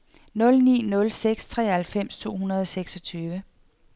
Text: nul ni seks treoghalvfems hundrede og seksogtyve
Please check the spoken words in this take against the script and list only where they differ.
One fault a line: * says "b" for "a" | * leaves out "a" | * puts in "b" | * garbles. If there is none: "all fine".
* puts in "nul"
* puts in "to"